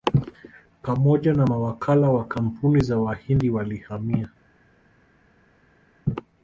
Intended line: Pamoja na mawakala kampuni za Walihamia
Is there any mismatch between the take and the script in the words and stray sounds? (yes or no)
yes